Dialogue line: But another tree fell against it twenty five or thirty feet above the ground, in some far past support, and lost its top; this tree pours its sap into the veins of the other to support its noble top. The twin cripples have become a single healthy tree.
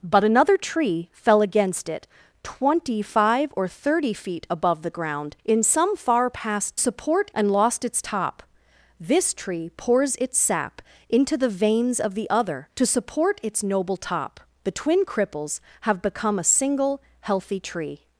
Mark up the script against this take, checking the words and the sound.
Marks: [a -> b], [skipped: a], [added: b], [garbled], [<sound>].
But another tree fell against it twenty five or thirty feet above the ground, in some far past support, and lost its top; this tree pours its sap into the veins of the other to support its noble top. The twin cripples have become a single healthy tree.